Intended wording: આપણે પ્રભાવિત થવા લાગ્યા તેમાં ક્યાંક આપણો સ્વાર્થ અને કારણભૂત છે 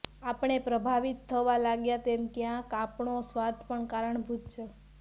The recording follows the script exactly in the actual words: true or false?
false